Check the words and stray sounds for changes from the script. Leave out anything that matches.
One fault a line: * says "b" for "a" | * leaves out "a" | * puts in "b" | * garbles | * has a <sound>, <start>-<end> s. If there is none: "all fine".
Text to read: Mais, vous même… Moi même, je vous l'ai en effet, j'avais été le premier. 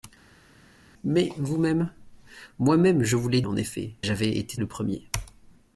all fine